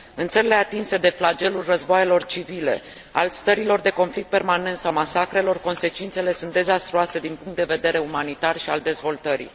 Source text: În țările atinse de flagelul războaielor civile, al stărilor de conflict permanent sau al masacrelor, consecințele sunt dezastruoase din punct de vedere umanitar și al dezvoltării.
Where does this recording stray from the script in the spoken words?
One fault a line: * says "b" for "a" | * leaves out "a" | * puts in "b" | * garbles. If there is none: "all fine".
* leaves out "al"